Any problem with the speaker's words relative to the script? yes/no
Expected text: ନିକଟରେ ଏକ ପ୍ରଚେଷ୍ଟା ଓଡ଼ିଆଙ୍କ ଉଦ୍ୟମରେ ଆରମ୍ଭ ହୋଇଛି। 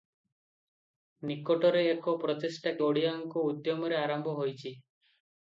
no